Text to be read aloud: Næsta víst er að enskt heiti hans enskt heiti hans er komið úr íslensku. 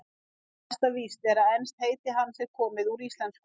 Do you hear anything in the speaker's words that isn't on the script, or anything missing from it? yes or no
yes